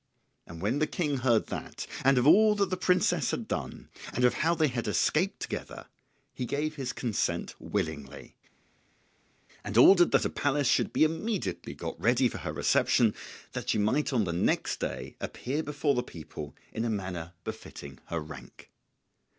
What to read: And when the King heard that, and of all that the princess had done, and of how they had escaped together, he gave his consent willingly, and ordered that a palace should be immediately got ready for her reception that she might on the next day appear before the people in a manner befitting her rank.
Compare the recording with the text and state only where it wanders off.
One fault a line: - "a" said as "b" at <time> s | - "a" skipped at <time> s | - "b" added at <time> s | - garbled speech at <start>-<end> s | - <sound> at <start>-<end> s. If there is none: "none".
none